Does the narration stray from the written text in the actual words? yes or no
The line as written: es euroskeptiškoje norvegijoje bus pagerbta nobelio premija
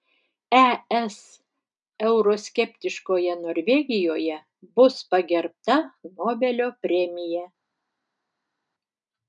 no